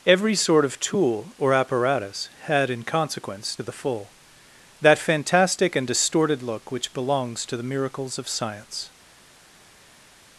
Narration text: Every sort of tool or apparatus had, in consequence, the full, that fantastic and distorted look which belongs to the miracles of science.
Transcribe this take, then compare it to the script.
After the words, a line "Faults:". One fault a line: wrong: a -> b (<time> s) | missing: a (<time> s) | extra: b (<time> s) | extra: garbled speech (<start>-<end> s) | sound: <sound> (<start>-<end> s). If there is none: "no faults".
Every sort of tool or apparatus had, in consequence, the full, that fantastic and distorted look which belongs to the miracles of science.
Faults:
no faults